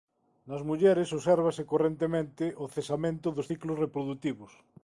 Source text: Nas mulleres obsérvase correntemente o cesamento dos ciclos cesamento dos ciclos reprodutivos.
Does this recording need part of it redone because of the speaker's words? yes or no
yes